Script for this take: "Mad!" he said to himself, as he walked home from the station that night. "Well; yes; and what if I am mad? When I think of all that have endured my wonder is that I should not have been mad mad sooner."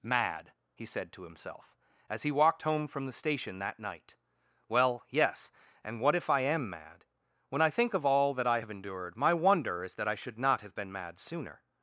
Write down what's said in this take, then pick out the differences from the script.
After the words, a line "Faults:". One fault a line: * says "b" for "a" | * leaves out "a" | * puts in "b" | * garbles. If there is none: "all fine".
"Mad!" he said to himself, as he walked home from the station that night. "Well; yes; and what if I am mad? When I think of all that I have endured my wonder is that I should not have been mad sooner."
Faults:
* puts in "I"
* leaves out "mad"